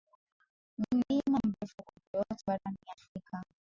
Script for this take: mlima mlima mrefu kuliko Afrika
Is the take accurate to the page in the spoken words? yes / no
no